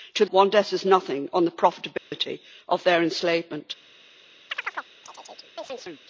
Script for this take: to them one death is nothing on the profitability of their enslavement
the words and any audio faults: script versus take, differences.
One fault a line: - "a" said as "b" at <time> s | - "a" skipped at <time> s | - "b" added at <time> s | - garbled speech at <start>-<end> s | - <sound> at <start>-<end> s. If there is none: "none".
- "them" skipped at 0.2 s
- dropout at 2.0-2.1 s
- chirp at 4.5-6.0 s